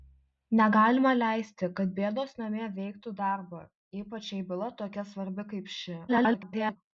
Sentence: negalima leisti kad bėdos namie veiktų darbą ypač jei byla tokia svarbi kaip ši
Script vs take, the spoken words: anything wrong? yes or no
yes